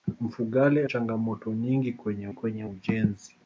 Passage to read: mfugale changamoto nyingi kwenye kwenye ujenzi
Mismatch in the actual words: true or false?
false